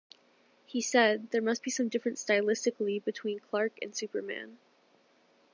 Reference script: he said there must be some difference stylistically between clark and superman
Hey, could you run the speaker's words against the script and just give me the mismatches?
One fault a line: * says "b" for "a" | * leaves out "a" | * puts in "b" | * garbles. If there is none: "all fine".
all fine